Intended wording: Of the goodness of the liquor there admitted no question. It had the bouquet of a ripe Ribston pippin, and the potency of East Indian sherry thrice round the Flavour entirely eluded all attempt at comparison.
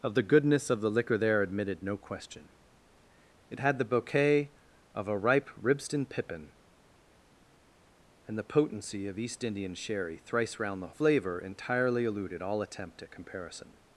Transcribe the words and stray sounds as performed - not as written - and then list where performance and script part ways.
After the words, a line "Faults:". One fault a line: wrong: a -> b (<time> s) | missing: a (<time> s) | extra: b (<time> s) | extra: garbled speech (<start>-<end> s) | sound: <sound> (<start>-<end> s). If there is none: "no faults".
Of the goodness of the liquor there admitted no question. It had the bouquet of a ripe Ribston pippin, and the potency of East Indian sherry thrice round the Flavour entirely eluded all attempt at comparison.
Faults:
no faults